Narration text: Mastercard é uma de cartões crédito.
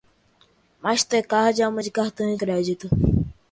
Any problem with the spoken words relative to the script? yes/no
no